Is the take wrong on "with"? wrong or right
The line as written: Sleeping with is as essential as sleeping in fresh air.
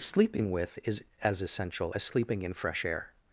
right